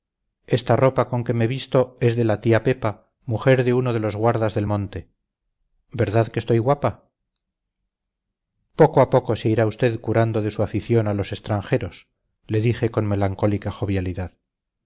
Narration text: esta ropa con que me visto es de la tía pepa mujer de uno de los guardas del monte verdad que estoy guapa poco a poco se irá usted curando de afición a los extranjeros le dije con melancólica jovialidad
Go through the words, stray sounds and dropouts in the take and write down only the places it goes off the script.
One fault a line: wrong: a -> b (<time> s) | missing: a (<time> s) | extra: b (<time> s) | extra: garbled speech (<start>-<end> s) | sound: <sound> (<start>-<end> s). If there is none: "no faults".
extra: su (10.5 s)